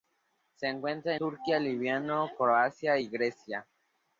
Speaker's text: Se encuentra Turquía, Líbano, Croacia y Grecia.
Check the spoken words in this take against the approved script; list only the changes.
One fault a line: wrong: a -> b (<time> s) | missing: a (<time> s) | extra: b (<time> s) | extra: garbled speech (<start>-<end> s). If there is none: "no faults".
no faults